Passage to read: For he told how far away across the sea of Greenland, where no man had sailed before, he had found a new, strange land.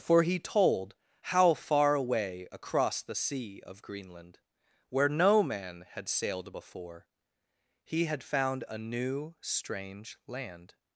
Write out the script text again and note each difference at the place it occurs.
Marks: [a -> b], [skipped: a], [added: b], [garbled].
For he told how far away across the sea of Greenland, where no man had sailed before, he had found a new, strange land.